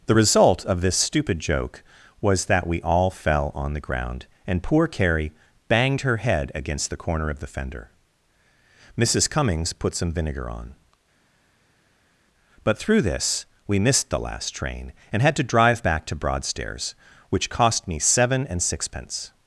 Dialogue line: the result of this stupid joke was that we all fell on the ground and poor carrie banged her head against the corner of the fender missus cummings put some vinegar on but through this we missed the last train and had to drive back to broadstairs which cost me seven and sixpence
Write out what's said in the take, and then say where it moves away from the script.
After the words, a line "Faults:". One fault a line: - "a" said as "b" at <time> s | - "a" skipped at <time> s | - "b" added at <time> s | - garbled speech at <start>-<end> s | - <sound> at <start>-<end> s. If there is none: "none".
the result of this stupid joke was that we all fell on the ground and poor carrie banged her head against the corner of the fender missus cummings put some vinegar on but through this we missed the last train and had to drive back to broadstairs which cost me seven and sixpence
Faults:
none